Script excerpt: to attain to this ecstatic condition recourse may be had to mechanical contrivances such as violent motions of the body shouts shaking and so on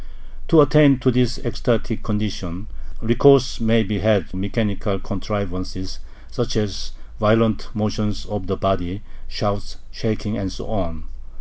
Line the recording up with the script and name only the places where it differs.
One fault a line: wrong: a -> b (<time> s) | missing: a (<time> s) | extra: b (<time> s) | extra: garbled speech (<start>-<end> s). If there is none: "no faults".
missing: to (4.3 s)